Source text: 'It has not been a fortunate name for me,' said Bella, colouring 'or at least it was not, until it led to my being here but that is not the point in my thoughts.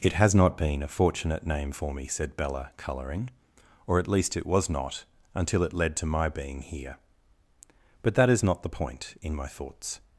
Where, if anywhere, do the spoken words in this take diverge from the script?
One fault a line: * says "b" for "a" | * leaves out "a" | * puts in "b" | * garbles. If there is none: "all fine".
all fine